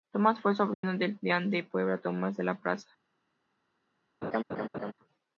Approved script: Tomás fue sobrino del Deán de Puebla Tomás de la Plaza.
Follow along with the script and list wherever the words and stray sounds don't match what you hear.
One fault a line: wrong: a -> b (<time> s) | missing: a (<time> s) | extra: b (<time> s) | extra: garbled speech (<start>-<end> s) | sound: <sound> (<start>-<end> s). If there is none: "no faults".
sound: dropout (0.7-0.8 s)
sound: laugh (4.2-4.9 s)